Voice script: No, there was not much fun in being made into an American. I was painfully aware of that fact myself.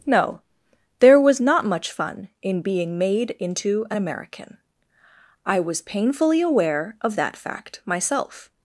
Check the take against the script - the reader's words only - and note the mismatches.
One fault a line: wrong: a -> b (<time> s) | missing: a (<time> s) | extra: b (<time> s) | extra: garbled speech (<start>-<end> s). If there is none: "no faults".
no faults